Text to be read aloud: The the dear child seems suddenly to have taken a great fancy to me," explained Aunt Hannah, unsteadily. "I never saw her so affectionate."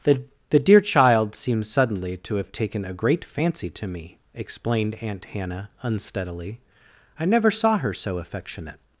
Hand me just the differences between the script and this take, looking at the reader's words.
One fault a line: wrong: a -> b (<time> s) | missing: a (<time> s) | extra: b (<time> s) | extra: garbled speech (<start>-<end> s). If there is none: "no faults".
no faults